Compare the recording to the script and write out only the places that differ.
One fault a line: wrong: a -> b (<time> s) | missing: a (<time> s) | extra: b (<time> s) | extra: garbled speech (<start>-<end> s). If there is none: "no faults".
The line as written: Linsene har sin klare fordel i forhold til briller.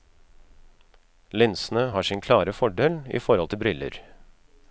no faults